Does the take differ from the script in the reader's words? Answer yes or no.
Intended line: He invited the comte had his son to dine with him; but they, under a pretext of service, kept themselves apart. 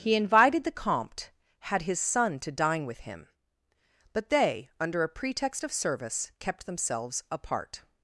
no